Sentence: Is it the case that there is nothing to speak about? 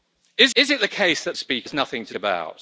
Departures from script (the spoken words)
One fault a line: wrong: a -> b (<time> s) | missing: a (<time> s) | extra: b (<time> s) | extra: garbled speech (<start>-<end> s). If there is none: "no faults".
extra: is (0.5 s)
wrong: there -> speak (1.4 s)
missing: speak (2.1 s)